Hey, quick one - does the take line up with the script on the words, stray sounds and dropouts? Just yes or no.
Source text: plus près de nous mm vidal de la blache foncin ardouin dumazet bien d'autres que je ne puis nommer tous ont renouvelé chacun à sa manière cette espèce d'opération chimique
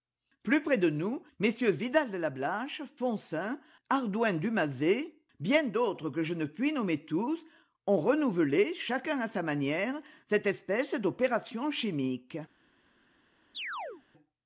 no